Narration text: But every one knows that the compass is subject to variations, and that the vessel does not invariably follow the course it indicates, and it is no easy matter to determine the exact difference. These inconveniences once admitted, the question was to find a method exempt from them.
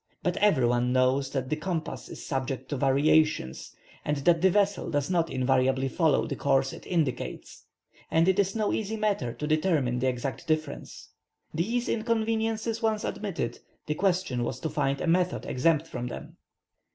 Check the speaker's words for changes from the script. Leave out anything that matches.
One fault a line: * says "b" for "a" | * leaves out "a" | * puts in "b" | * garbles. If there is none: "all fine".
all fine